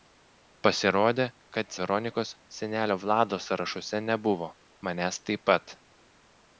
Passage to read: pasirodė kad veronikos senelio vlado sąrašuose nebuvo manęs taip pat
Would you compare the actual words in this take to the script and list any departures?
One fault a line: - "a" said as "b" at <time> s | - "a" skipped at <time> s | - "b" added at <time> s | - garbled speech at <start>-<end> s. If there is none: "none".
none